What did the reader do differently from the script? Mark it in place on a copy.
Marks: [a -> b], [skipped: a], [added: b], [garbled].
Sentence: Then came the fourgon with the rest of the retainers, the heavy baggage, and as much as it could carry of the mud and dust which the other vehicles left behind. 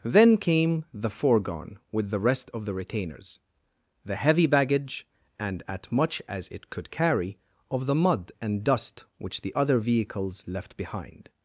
Then came the fourgon with the rest of the retainers, the heavy baggage, and [as -> at] much as it could carry of the mud and dust which the other vehicles left behind.